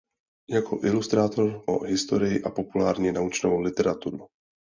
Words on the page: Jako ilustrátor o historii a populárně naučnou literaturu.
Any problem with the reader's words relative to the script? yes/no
no